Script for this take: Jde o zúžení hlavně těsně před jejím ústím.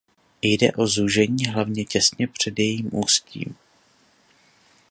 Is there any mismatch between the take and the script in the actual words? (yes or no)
no